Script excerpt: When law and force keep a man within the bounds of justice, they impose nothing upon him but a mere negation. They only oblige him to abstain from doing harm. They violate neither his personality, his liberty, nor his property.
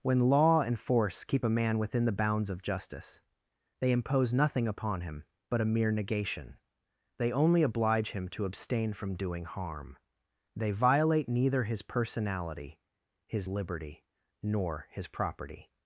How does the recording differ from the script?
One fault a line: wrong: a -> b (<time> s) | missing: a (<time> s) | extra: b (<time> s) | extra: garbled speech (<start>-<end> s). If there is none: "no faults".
no faults